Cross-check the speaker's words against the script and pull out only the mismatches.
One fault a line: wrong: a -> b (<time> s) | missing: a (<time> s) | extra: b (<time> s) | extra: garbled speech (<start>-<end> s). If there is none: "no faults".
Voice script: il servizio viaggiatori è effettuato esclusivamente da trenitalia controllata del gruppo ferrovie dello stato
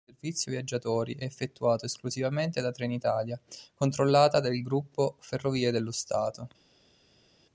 no faults